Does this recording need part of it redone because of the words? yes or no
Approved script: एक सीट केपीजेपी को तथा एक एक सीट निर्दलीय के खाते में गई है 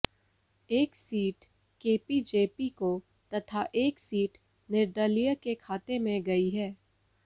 yes